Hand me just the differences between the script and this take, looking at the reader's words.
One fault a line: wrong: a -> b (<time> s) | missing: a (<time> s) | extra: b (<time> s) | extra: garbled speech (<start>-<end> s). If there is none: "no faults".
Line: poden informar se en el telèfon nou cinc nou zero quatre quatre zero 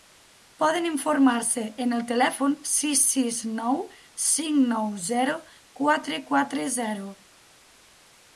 extra: sis sis (2.7 s)